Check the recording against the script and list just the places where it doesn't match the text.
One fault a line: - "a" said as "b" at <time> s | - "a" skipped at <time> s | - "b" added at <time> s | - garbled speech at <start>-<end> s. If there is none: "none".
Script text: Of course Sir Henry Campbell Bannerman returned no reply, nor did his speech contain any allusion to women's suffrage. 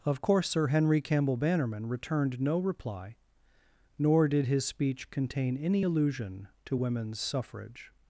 none